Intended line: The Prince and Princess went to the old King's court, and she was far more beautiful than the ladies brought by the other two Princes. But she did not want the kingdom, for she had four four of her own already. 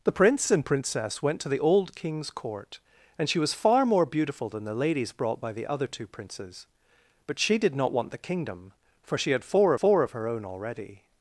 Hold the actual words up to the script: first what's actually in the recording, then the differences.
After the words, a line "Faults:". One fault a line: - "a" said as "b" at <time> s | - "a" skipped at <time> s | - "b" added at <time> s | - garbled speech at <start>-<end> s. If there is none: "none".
The Prince and Princess went to the old King's court, and she was far more beautiful than the ladies brought by the other two Princes. But she did not want the kingdom, for she had four four of her own already.
Faults:
none